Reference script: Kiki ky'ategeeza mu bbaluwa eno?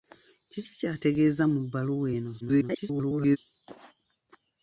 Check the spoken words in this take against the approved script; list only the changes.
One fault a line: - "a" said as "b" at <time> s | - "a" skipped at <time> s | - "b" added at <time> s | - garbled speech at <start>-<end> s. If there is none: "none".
- garbled speech at 2.4-3.4 s